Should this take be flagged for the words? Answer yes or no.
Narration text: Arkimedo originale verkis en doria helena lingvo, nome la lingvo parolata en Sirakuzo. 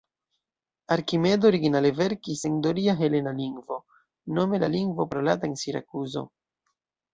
no